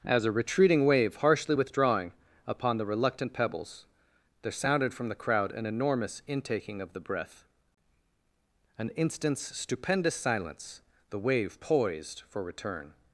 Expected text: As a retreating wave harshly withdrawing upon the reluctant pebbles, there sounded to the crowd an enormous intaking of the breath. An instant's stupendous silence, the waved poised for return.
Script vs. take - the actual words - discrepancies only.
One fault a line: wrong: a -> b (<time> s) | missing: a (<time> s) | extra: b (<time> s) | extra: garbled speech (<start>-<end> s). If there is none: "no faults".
wrong: to -> from (4.9 s)
wrong: waved -> wave (11.2 s)